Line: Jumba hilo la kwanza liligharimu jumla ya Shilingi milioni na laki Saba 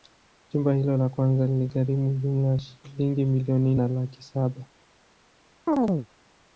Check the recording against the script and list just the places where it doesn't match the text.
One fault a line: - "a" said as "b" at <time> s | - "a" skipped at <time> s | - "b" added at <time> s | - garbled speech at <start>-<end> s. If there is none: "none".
none